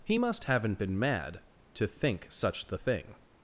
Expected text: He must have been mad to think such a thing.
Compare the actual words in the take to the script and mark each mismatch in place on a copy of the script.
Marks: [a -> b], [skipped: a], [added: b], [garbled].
He must [have -> haven't] been mad to think such [a -> the] thing.